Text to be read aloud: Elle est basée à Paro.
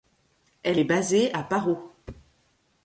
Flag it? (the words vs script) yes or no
no